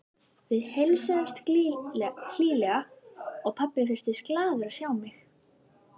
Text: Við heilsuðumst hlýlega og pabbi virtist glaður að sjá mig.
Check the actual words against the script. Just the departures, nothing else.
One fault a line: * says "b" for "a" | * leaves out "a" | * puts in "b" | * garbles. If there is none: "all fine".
all fine